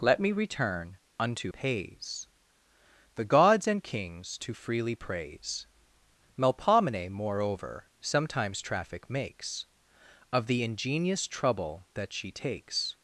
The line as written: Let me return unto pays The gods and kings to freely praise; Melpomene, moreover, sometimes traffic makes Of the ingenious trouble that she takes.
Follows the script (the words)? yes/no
yes